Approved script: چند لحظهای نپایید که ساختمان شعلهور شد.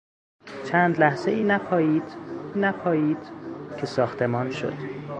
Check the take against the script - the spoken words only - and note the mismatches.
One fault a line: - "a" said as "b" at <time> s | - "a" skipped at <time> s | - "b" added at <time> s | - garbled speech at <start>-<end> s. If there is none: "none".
- "نپایید" added at 2.6 s
- "شعلهور" skipped at 4.5 s